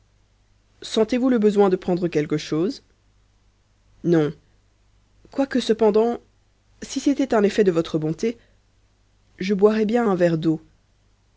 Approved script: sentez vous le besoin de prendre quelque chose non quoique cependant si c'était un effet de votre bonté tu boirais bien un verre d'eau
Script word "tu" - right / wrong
wrong